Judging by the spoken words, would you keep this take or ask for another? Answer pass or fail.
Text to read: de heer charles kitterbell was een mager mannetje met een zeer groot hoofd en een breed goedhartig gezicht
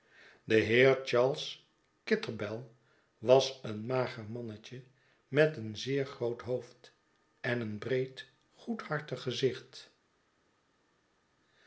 pass